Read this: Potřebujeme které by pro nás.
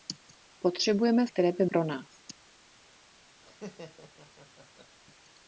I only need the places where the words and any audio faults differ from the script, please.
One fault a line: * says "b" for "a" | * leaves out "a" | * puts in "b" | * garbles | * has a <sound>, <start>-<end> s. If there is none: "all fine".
* has a laugh, 3.4-5.0 s